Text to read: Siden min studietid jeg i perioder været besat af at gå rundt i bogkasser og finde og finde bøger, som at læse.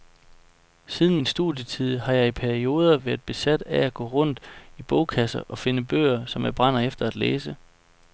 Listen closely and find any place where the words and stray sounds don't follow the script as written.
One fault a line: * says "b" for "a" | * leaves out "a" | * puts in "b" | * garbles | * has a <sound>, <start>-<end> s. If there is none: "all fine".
* puts in "har"
* says "bøger som jeg brænder efter" for "og finde bøger som"